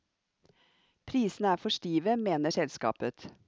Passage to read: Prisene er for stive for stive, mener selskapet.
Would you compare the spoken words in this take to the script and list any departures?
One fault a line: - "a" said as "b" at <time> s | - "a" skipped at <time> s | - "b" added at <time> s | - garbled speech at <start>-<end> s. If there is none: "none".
- "for stive" skipped at 2.2 s